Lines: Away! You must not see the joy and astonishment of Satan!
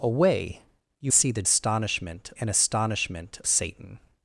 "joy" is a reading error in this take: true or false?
true